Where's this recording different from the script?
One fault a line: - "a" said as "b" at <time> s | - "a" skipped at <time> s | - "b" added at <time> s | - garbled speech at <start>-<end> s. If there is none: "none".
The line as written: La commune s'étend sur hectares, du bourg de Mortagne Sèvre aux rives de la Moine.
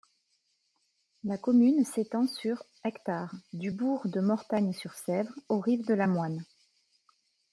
- "Sur" added at 4.7 s